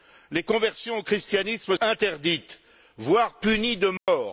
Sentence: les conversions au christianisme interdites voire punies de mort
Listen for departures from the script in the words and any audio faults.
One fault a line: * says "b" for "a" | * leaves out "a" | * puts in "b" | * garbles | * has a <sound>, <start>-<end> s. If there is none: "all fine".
* has a dropout, 4.0-4.1 s